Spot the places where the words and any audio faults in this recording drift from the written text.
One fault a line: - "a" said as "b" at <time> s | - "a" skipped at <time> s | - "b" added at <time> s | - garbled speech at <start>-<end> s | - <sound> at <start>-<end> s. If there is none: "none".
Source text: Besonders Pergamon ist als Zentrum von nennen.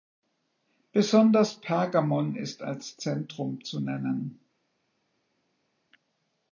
- "von" said as "zu" at 3.6 s